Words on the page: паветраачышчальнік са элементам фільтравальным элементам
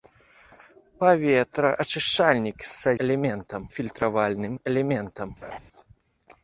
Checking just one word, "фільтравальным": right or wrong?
right